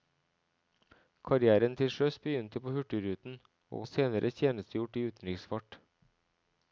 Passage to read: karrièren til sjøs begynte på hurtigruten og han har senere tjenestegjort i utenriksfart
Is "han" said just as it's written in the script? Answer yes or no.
no